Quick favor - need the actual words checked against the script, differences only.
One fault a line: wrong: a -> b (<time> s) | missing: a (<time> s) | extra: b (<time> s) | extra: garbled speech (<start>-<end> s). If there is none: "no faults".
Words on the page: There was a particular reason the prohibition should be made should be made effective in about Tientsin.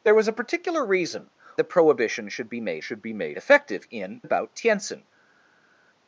no faults